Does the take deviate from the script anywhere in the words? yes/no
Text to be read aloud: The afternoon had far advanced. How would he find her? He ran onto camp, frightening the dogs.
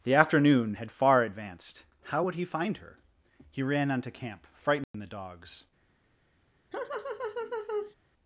no